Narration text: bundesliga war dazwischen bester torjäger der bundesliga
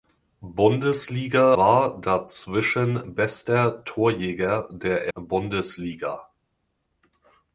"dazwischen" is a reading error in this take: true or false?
false